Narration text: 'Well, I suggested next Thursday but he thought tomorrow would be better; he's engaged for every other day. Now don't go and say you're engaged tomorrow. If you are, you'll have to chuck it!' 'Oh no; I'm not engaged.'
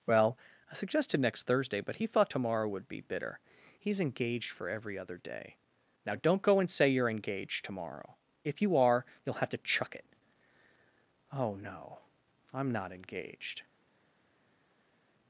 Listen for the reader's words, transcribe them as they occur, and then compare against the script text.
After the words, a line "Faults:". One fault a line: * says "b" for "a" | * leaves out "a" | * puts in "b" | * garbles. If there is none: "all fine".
'Well, I suggested next Thursday but he thought tomorrow would be bitter; he's engaged for every other day. Now don't go and say you're engaged tomorrow. If you are, you'll have to chuck it!' 'Oh no; I'm not engaged.'
Faults:
* says "bitter" for "better"